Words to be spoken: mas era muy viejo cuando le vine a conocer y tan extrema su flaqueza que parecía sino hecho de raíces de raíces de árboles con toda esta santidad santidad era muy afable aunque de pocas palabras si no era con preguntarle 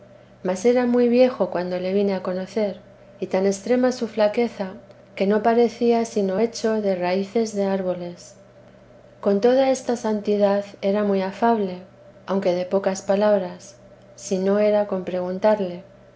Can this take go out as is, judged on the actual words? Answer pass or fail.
fail